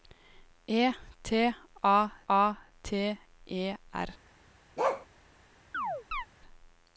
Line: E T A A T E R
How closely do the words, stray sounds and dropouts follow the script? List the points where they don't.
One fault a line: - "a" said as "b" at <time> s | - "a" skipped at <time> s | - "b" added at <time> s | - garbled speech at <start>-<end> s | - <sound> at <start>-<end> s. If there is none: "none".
- bark at 4.8-5.1 s
- chirp at 5.7-6.3 s